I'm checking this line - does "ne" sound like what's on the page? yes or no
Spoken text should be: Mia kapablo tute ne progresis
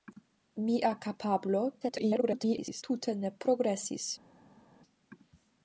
yes